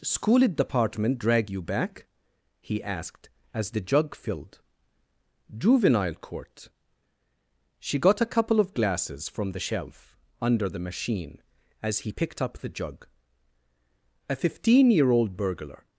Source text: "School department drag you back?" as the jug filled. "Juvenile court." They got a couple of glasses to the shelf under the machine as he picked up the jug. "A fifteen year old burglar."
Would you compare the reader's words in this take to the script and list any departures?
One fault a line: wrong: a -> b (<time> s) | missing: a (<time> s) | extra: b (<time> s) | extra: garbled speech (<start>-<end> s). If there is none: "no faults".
extra: he asked (2.6 s)
wrong: They -> She (7.8 s)
wrong: to -> from (9.3 s)